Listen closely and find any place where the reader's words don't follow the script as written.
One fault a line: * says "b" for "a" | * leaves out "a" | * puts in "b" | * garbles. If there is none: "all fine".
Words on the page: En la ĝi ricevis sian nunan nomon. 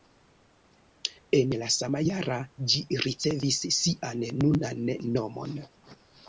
* puts in "sama jara"